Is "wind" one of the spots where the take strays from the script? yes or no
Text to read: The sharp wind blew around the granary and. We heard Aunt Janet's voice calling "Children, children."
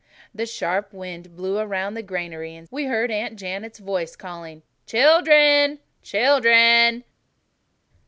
no